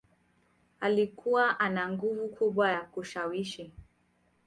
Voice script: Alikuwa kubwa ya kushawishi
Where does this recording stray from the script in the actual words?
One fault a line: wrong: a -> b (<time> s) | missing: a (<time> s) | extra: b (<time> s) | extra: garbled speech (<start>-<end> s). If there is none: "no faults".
extra: ana nguvu (1.6 s)